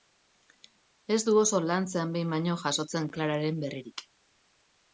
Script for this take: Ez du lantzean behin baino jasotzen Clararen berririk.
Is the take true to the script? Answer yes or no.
no